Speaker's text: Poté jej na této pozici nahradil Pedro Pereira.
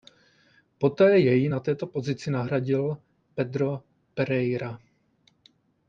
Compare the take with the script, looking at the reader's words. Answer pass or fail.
pass